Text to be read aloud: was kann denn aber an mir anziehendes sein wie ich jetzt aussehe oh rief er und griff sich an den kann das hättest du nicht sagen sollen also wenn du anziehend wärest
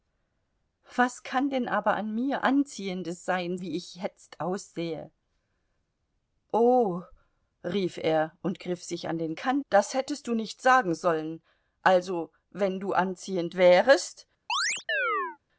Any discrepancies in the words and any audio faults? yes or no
yes